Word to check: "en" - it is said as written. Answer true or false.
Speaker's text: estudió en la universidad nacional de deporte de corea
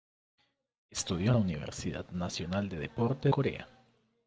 false